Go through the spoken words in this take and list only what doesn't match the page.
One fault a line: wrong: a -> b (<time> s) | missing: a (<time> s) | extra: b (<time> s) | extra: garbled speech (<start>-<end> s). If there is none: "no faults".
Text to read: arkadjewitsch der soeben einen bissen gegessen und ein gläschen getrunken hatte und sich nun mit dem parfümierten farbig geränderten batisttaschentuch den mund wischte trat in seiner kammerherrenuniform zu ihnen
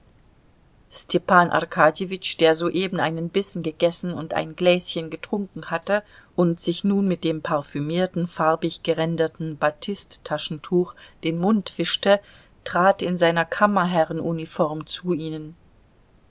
no faults